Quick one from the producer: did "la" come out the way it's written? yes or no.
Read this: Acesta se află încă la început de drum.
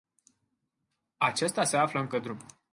no